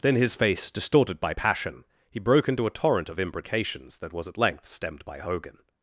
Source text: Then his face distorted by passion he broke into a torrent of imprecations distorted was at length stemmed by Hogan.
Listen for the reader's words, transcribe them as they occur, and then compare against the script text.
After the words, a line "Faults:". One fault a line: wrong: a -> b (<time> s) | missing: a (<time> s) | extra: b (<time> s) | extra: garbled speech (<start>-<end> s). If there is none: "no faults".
Then his face distorted by passion he broke into a torrent of imprecations that was at length stemmed by Hogan.
Faults:
wrong: distorted -> that (4.0 s)